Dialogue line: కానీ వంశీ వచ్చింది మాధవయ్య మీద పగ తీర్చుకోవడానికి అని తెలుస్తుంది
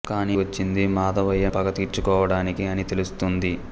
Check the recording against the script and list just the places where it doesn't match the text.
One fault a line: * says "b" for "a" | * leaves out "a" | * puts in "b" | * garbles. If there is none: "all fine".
* leaves out "వంశీ"
* leaves out "మీద"